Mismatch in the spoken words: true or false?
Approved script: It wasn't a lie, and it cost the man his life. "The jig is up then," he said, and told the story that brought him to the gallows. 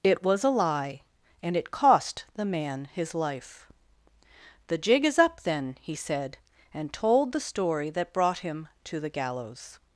true